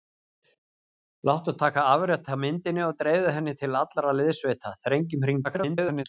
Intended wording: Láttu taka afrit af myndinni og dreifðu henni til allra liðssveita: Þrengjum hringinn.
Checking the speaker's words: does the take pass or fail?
fail